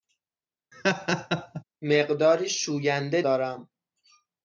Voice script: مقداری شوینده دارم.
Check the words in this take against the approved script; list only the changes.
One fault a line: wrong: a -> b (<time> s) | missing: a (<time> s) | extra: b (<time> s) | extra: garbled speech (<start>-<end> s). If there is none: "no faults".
no faults